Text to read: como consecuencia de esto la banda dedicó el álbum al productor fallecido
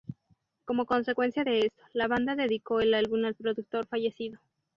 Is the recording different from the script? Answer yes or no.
no